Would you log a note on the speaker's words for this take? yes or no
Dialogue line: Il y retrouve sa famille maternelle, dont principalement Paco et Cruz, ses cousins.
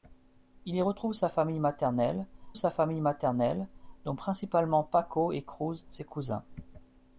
yes